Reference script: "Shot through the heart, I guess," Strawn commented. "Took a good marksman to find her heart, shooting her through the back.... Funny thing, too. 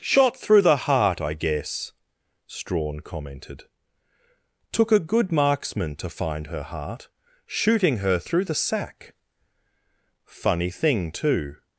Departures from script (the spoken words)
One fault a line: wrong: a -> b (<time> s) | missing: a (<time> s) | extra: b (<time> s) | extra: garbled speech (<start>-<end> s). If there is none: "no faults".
wrong: back -> sack (8.6 s)